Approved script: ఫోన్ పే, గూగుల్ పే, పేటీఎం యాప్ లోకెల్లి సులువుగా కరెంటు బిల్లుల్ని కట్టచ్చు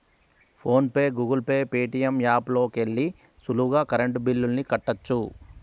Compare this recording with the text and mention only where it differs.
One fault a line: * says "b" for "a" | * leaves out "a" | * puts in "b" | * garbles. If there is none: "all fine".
all fine